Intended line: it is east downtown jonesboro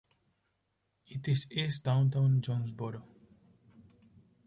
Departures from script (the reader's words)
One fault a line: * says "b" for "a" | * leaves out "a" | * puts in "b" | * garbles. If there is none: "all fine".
all fine